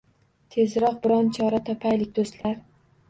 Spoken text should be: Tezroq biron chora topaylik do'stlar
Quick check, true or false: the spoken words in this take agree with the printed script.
true